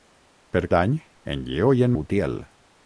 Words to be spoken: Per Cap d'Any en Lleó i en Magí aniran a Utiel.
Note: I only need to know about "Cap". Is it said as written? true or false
false